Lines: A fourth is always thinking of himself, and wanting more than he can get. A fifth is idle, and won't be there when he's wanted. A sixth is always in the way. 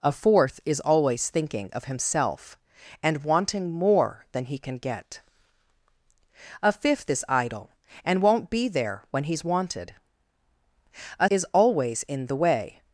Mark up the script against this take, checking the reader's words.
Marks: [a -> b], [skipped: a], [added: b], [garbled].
A fourth is always thinking of himself, and wanting more than he can get. A fifth is idle, and won't be there when he's wanted. A [skipped: sixth] is always in the way.